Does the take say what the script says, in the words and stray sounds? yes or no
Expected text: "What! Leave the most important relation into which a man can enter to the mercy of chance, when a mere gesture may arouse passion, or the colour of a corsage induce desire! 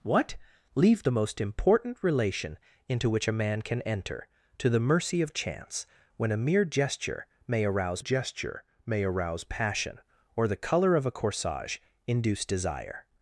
no